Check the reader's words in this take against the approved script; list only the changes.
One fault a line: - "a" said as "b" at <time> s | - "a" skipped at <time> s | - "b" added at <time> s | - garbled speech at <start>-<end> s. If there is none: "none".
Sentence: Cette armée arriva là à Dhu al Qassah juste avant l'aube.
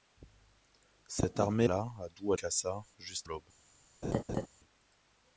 - "arriva" skipped at 1.7 s
- "al" skipped at 2.3 s
- "avant" skipped at 3.3 s